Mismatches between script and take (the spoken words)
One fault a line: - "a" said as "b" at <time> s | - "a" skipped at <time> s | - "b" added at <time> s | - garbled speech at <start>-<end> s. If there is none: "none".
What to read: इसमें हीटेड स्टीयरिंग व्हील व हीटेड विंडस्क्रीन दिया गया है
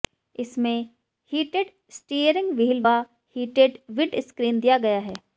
none